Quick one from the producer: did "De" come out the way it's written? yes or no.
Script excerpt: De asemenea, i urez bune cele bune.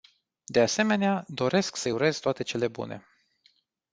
yes